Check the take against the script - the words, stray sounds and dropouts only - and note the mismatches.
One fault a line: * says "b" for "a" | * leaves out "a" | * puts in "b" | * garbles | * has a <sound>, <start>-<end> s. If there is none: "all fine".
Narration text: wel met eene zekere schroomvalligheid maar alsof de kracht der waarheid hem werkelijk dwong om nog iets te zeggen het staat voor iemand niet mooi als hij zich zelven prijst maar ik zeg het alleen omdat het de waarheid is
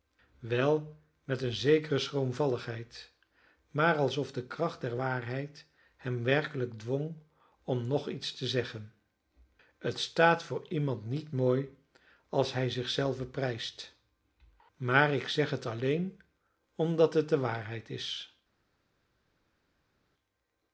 all fine